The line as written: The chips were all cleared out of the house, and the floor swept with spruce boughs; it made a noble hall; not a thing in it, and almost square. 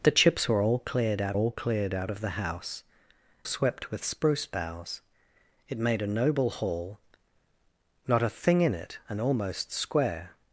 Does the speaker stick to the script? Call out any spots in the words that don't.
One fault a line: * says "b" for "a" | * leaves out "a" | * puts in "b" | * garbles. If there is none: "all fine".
* says "all cleared out of" for "of the house and"
* says "house" for "floor"